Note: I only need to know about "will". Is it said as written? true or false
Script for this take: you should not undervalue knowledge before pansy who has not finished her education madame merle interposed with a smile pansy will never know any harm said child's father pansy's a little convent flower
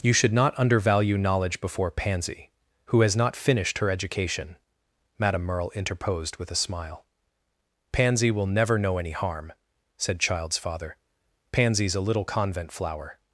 true